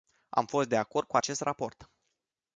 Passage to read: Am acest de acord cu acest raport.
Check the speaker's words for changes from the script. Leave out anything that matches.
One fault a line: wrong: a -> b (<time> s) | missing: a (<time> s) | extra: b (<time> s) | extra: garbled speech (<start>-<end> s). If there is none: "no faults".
wrong: acest -> fost (0.5 s)